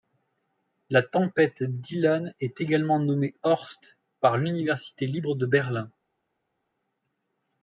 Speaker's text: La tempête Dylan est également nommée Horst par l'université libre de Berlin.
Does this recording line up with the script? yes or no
yes